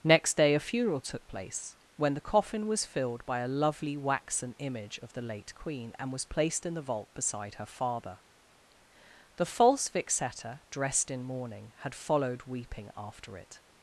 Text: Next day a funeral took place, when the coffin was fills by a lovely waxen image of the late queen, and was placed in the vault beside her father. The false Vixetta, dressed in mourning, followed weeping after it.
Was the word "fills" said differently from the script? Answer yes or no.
yes